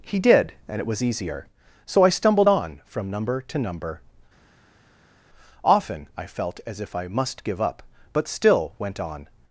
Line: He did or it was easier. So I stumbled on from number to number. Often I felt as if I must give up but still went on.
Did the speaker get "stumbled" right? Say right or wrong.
right